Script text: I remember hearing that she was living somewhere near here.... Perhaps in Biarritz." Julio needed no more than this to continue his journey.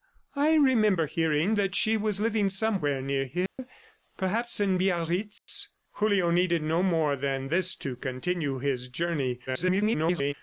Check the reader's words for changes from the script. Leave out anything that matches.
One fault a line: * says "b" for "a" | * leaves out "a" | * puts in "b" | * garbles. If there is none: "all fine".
* garbles